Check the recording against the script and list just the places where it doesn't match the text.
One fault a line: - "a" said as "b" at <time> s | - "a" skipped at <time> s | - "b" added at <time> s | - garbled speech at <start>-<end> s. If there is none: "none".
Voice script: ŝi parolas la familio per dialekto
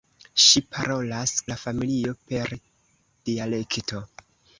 none